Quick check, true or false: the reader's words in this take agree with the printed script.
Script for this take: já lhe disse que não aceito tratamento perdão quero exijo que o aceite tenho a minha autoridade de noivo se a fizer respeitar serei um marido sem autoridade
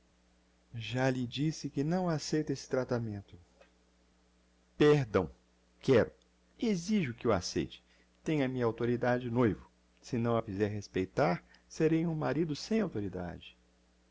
false